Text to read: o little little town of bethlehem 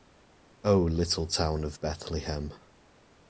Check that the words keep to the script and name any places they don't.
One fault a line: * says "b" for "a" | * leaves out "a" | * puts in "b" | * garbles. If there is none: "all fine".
* leaves out "little"